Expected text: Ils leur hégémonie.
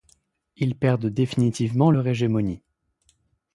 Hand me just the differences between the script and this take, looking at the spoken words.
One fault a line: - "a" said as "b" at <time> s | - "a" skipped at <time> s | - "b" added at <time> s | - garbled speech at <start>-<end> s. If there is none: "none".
- "perdent définitivement" added at 0.7 s